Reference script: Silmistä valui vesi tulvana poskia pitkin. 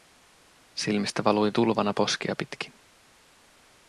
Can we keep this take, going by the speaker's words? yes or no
no